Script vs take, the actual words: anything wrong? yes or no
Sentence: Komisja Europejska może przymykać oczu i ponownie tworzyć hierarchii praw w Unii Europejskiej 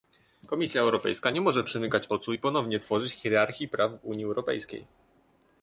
yes